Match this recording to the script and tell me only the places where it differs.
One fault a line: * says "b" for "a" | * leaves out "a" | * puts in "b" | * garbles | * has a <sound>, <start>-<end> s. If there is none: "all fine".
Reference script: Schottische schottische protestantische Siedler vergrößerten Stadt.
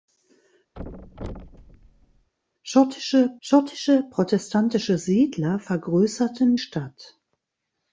* has a thud, 0.7-2.3 s